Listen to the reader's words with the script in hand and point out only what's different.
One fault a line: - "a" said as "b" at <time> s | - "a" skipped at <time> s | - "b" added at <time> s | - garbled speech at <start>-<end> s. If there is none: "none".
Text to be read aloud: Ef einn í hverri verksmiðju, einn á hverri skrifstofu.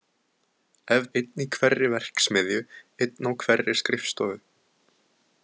none